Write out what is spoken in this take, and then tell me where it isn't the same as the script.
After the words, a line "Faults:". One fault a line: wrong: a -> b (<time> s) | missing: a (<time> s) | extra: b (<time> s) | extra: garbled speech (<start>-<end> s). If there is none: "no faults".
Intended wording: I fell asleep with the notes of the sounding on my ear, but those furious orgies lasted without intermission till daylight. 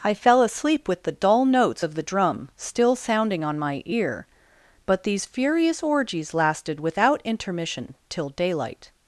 I fell asleep with the dull notes of the drum still sounding on my ear, but these furious orgies lasted without intermission till daylight.
Faults:
extra: dull (1.1 s)
extra: drum still (2.0 s)
wrong: those -> these (5.0 s)